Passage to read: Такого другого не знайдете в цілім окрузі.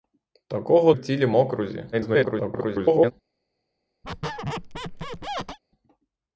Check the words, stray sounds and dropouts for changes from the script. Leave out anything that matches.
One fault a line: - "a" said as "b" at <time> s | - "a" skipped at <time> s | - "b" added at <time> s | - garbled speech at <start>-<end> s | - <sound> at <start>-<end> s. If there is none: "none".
- "другого не знайдете" skipped at 0.9 s
- garbled speech at 1.9-3.1 s
- squeak at 4.0-5.6 s